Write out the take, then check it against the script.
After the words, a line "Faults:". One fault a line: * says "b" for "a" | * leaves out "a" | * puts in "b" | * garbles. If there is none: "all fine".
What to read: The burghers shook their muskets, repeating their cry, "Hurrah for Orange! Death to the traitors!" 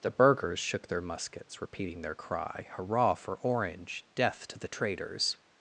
The burghers shook their muskets, repeating their cry, "Hurrah for Orange! Death to the traitors!"
Faults:
all fine